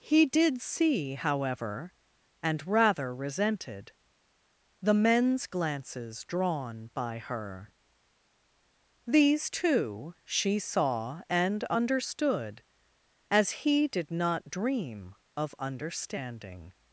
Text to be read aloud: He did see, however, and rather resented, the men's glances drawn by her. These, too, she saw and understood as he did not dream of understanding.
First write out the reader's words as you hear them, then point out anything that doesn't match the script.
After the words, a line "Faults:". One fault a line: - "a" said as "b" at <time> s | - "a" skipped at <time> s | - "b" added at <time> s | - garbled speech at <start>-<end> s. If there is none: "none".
He did see, however, and rather resented, the men's glances drawn by her. These, too, she saw and understood as he did not dream of understanding.
Faults:
none